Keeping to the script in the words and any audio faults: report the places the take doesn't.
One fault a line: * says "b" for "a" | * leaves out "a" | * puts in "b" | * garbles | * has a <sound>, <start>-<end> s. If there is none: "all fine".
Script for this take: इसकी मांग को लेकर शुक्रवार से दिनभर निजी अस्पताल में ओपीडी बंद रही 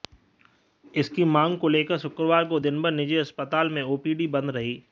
* says "को" for "से"